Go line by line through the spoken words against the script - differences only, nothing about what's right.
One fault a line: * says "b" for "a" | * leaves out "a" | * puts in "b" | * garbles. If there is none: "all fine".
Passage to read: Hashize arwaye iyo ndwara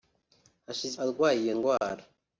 all fine